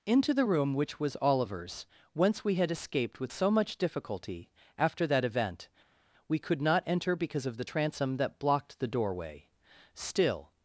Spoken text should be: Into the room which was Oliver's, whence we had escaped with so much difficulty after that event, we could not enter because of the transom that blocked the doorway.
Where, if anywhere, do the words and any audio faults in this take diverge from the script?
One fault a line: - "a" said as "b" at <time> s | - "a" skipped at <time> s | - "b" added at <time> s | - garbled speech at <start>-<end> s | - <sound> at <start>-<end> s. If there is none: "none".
- "Still" added at 9.9 s